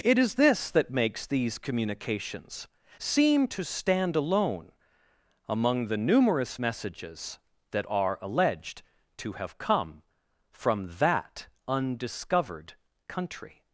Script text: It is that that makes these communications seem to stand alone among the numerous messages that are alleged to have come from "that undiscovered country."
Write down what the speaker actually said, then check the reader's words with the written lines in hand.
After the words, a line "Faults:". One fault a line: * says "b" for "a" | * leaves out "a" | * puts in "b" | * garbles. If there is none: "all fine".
It is this that makes these communications seem to stand alone among the numerous messages that are alleged to have come from "that undiscovered country."
Faults:
* says "this" for "that"